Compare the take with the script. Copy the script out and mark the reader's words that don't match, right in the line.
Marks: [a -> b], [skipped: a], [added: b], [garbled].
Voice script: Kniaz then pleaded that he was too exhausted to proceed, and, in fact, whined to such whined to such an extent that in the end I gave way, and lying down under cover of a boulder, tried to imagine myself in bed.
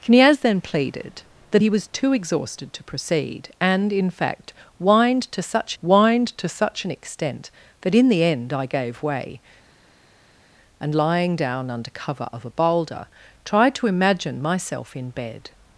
Kniaz then pleaded that he was too exhausted to proceed, and, in fact, whined to such whined to such an extent that in the end I gave way, and lying down under cover of a boulder, tried to imagine myself in bed.